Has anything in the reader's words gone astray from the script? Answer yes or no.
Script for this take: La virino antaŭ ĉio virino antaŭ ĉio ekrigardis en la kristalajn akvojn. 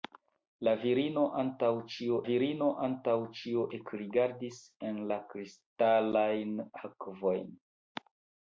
no